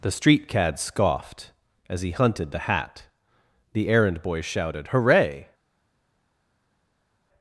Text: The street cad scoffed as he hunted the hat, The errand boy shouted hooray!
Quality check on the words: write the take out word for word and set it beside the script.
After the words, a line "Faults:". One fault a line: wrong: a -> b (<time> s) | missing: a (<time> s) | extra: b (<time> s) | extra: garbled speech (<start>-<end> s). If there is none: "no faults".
The street cad scoffed as he hunted the hat, The errand boy shouted hooray!
Faults:
no faults